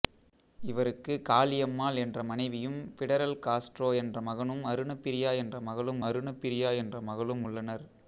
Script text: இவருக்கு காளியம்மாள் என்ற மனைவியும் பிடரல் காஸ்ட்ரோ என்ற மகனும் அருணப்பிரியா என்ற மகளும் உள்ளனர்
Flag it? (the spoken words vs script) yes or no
yes